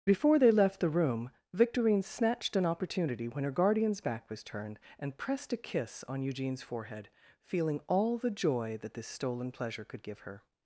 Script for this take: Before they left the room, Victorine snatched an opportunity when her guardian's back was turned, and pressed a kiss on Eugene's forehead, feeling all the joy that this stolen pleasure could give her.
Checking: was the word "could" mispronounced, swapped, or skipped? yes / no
no